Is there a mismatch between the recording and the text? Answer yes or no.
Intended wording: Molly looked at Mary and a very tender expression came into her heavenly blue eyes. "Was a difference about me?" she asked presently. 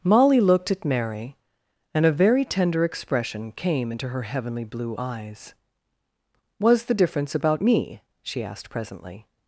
yes